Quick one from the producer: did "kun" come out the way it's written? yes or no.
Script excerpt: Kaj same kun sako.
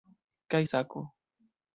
no